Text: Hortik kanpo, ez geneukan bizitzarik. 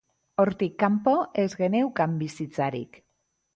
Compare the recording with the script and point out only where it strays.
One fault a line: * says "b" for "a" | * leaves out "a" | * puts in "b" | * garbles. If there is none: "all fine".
all fine